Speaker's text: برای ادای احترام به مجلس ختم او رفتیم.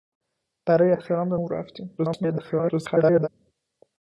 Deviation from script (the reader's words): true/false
true